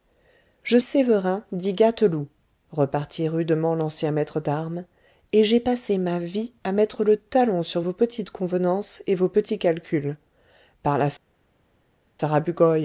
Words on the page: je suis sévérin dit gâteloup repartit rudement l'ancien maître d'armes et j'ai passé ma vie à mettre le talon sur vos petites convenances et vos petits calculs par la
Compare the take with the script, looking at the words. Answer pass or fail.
fail